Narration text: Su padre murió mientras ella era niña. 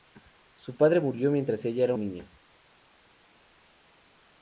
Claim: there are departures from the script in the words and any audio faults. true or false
false